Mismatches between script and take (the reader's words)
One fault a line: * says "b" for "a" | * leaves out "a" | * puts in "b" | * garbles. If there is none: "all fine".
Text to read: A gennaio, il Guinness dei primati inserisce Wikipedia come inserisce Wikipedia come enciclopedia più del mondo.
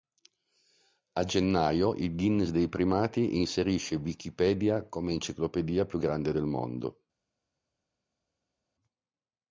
* leaves out "inserisce Wikipedia come"
* puts in "grande"